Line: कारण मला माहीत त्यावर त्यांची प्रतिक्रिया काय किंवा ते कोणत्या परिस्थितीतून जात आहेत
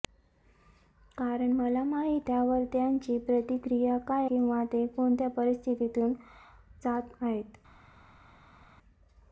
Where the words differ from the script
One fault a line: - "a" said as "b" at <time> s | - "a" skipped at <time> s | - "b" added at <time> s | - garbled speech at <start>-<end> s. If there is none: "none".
none